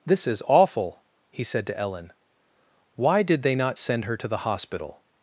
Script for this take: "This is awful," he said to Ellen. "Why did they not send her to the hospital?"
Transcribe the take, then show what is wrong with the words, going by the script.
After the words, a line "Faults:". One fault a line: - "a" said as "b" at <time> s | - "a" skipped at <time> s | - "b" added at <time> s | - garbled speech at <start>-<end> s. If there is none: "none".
"This is awful," he said to Ellen. "Why did they not send her to the hospital?"
Faults:
none